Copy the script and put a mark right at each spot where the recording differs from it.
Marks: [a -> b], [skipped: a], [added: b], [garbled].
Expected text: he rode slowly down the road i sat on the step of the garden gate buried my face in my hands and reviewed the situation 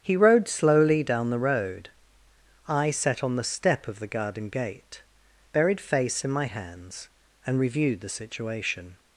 he rode slowly down the road i sat on the step of the garden gate buried [skipped: my] face in my hands and reviewed the situation